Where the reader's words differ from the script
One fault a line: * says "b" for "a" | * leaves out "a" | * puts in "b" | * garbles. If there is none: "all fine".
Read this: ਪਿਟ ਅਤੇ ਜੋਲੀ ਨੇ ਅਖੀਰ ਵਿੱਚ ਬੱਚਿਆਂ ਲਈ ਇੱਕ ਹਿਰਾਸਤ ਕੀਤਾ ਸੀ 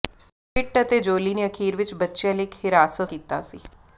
all fine